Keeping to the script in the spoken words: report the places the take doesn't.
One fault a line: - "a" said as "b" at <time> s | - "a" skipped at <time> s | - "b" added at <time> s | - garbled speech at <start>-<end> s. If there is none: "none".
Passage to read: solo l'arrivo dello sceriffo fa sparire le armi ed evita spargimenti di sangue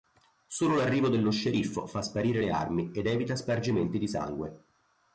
none